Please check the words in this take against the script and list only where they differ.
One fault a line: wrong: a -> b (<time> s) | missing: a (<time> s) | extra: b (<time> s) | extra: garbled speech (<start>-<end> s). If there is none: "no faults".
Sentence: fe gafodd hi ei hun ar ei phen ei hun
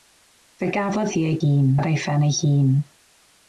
no faults